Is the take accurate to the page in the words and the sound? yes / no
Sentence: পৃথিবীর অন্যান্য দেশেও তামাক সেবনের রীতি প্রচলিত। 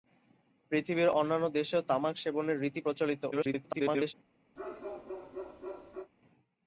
no